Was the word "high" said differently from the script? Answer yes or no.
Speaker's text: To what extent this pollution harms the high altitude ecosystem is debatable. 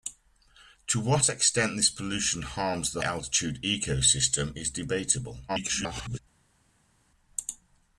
yes